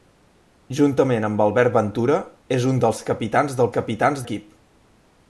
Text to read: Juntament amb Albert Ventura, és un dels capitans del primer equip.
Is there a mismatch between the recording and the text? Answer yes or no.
yes